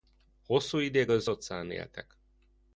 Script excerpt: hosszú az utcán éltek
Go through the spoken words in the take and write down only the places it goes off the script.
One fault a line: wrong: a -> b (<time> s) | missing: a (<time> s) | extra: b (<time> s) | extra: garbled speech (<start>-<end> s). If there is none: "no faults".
extra: ideig (0.8 s)